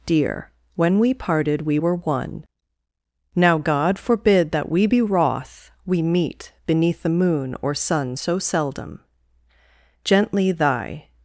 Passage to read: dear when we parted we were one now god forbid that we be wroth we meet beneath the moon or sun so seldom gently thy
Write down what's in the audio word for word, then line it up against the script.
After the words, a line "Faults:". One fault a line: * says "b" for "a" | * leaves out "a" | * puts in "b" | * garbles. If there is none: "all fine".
dear when we parted we were one now god forbid that we be wroth we meet beneath the moon or sun so seldom gently thy
Faults:
all fine